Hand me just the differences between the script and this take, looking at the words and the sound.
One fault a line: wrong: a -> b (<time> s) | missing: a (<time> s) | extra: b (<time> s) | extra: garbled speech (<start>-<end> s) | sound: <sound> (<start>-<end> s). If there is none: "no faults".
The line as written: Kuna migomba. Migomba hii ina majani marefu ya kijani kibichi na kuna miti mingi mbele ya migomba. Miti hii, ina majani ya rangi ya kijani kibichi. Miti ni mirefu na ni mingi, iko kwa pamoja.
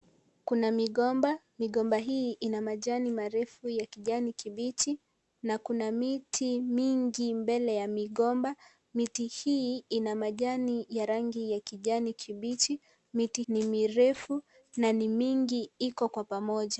no faults